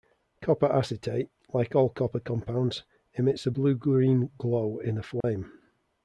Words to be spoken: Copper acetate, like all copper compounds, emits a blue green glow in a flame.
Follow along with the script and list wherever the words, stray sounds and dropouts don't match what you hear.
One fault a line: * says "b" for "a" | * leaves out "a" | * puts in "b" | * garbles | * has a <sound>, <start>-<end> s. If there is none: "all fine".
* has a dropout, 5.2-5.2 s